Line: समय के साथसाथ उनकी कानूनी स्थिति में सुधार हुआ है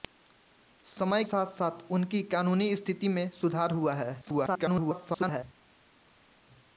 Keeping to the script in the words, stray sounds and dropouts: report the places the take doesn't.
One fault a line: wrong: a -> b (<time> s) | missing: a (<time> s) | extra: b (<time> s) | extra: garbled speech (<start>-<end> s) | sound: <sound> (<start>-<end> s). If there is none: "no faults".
missing: के (1.2 s)
extra: garbled speech (4.2-5.4 s)